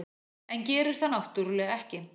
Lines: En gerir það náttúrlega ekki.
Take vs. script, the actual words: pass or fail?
pass